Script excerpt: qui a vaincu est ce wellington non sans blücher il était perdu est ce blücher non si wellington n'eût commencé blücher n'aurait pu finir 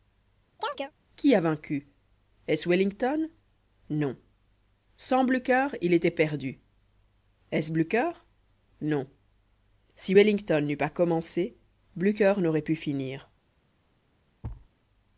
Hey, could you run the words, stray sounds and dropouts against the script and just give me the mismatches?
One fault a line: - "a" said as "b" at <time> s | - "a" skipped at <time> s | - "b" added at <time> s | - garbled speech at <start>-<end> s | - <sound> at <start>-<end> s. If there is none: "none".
- chirp at 0.6-0.9 s
- "pas" added at 10.8 s
- thud at 14.4-14.7 s